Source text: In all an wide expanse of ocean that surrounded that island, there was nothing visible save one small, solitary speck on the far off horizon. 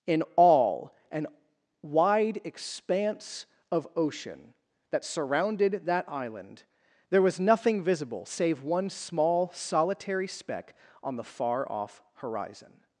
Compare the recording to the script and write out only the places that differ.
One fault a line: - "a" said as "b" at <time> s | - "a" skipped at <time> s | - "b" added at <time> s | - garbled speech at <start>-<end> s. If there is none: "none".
none